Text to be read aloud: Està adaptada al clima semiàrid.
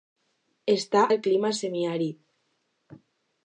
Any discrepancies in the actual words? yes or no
yes